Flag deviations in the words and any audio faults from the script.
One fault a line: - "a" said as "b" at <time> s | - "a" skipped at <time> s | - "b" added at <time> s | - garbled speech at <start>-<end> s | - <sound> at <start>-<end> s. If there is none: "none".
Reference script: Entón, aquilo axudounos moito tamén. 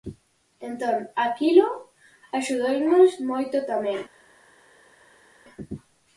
none